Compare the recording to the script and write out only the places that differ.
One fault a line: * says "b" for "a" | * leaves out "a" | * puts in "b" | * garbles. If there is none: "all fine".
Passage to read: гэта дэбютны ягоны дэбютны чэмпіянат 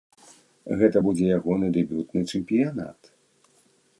* says "будзе" for "дэбютны"